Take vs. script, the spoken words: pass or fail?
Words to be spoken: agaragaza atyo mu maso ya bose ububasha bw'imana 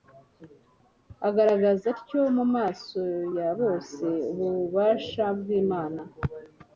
pass